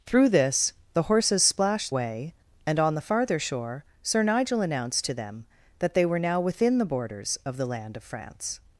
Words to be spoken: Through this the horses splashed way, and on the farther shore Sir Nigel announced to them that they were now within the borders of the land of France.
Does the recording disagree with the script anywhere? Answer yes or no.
no